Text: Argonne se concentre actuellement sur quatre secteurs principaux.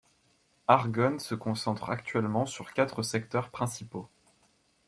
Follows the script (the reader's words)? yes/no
yes